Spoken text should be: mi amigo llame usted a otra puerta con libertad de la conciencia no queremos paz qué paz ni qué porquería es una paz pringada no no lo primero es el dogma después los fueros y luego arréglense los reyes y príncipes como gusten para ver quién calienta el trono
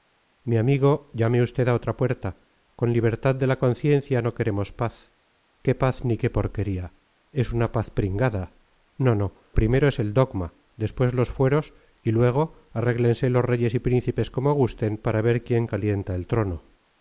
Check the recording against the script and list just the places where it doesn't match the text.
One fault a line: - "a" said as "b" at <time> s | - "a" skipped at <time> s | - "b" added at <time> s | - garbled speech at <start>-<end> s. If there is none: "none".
- "lo" skipped at 9.3 s